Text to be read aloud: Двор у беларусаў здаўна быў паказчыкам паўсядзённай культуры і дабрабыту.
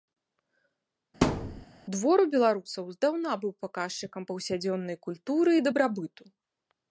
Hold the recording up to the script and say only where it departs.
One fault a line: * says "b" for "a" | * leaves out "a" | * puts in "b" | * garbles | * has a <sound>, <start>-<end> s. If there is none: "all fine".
* has a thud, 1.2-1.7 s